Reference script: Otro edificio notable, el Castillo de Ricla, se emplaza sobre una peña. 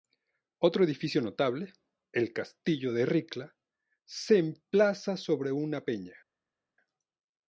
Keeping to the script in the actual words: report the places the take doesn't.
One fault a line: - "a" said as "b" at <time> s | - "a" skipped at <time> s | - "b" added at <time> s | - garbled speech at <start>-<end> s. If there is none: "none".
none